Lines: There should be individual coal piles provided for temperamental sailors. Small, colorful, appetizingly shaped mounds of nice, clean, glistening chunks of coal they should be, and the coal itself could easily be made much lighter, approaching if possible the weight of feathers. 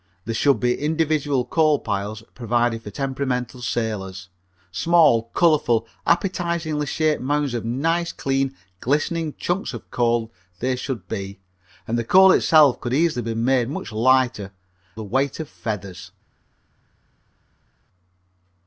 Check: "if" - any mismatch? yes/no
yes